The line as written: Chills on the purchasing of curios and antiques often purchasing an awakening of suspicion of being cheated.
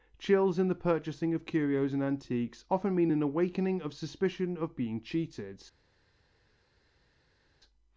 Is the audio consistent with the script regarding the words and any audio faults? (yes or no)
no